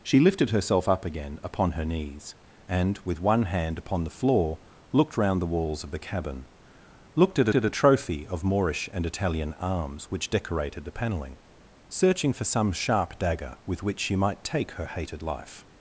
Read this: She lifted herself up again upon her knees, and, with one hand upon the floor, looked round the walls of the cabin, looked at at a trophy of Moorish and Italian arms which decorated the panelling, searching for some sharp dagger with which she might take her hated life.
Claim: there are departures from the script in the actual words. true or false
false